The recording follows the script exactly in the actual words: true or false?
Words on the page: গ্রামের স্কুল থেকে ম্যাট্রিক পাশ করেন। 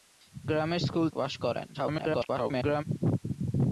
false